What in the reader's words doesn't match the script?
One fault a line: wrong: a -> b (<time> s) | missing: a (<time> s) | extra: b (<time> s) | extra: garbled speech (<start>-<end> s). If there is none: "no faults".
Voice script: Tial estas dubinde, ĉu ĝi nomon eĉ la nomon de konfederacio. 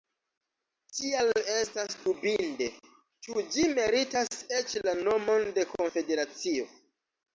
wrong: nomon -> meritas (3.8 s)